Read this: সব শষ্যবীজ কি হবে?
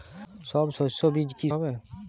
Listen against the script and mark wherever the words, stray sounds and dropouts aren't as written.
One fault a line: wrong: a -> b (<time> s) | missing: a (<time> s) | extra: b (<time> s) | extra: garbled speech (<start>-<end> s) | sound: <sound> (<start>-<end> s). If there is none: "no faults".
no faults